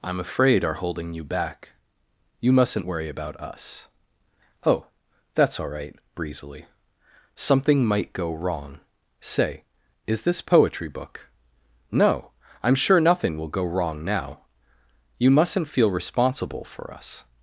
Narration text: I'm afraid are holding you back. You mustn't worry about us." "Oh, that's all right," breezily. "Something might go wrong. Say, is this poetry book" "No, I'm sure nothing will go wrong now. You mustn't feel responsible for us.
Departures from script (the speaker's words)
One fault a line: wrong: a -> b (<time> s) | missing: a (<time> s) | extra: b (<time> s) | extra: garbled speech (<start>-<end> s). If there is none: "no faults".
no faults